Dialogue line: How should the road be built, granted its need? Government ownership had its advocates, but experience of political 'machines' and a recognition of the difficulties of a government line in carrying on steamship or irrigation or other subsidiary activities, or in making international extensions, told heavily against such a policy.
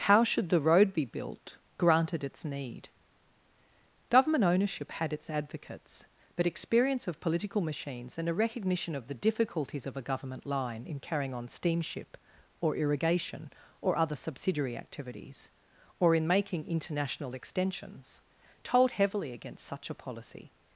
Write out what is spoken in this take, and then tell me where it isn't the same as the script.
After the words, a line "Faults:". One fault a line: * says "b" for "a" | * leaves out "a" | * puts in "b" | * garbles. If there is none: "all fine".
How should the road be built, granted its need? Government ownership had its advocates, but experience of political 'machines' and a recognition of the difficulties of a government line in carrying on steamship or irrigation or other subsidiary activities, or in making international extensions, told heavily against such a policy.
Faults:
all fine